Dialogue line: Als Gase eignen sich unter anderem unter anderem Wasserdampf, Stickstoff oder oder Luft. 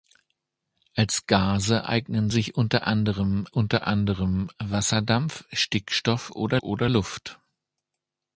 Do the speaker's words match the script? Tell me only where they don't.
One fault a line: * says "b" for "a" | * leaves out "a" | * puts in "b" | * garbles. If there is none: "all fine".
all fine